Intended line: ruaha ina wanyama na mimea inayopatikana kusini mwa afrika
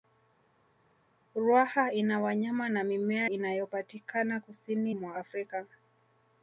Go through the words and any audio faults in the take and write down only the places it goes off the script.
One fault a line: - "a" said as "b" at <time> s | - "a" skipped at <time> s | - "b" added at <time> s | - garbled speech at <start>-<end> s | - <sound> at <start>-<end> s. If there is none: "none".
none